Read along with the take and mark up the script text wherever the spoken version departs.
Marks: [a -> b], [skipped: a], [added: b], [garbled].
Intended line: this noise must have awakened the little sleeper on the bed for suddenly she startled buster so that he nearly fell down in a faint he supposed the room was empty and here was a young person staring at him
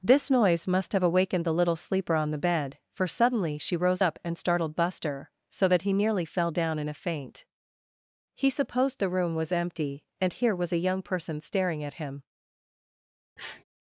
this noise must have awakened the little sleeper on the bed for suddenly she [added: rose up and] startled buster so that he nearly fell down in a faint he supposed the room was empty and here was a young person staring at him